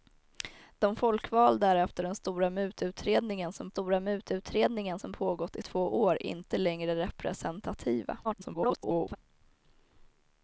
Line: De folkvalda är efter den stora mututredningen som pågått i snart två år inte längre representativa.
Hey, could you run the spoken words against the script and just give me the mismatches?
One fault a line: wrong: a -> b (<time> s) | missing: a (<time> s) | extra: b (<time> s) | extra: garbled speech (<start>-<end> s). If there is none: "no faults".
extra: stora mututredningen som (3.7 s)
missing: snart (5.6 s)
extra: garbled speech (8.2-9.2 s)